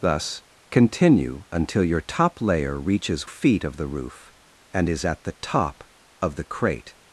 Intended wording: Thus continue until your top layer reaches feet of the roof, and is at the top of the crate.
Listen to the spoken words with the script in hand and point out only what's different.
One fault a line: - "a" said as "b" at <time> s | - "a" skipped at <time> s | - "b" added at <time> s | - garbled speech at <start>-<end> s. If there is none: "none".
none